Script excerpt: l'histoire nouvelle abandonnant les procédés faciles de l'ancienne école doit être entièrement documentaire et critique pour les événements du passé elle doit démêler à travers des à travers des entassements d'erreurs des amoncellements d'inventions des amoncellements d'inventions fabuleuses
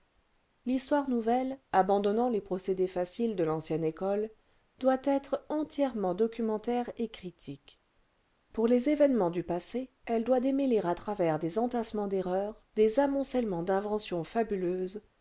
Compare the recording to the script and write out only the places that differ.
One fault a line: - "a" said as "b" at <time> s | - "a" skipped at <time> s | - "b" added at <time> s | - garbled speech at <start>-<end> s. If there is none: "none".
- "à travers des" skipped at 11.6 s
- "des amoncellements d'inventions" skipped at 14.2 s